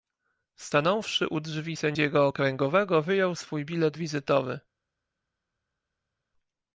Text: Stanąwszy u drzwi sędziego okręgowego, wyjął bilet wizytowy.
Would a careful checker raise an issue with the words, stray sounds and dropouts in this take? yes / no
yes